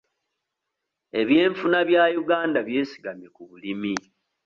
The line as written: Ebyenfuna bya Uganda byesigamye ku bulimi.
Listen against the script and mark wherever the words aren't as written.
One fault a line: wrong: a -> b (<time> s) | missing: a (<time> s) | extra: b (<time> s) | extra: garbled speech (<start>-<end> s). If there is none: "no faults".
no faults